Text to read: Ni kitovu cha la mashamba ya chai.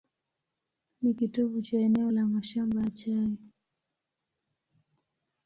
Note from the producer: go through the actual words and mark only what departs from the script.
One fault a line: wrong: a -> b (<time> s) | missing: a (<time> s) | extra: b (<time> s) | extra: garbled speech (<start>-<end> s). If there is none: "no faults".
extra: eneo (1.8 s)